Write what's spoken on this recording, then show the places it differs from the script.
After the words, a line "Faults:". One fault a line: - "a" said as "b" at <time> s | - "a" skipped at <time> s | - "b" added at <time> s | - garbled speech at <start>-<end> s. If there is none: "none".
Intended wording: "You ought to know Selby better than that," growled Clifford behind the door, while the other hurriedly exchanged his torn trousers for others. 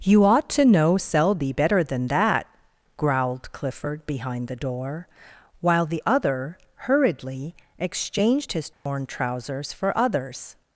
"You ought to know Selby better than that," growled Clifford behind the door, while the other hurriedly exchanged his torn trousers for others.
Faults:
none